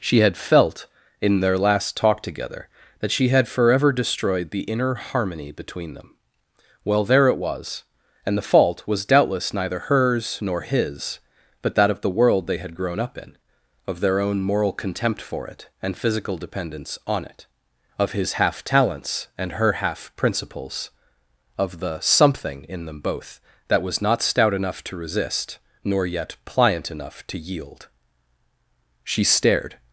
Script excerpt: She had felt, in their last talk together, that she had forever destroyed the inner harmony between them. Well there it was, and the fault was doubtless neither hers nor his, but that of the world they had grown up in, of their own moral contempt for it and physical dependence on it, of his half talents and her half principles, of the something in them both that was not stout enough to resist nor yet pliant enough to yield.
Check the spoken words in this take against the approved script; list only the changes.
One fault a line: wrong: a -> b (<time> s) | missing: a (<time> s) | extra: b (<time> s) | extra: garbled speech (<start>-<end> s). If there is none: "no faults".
extra: She stared (29.0 s)